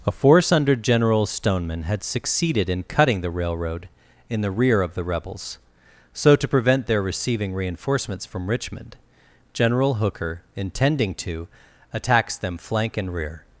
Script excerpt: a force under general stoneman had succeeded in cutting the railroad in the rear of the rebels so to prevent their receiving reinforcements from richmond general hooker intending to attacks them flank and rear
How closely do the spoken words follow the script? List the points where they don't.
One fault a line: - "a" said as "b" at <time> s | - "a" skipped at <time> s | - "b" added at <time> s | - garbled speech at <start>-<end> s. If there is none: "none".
none